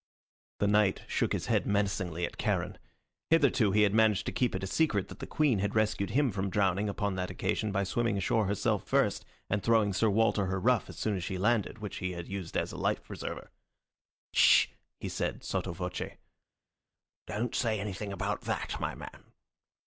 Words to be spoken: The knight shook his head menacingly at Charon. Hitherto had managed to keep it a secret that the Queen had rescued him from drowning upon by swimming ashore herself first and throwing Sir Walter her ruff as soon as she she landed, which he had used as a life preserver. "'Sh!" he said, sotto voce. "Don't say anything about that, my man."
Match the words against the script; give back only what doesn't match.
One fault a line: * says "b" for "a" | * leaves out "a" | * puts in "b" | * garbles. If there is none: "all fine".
* puts in "he"
* puts in "that occasion"
* leaves out "she"